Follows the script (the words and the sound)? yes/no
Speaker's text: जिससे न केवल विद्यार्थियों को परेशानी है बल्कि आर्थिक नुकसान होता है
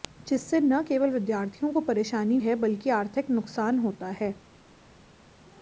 yes